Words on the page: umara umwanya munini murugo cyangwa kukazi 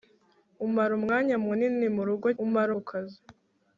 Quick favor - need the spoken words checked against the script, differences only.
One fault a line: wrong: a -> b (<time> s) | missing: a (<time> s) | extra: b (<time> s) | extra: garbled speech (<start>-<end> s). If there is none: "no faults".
wrong: cyangwa -> umara (2.4 s)